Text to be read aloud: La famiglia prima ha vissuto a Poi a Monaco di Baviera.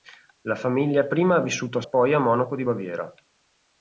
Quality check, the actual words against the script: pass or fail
pass